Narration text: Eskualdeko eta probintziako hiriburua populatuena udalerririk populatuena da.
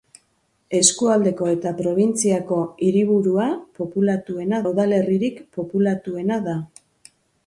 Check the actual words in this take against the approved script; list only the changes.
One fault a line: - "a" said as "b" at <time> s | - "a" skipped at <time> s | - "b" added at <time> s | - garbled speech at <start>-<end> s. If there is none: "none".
none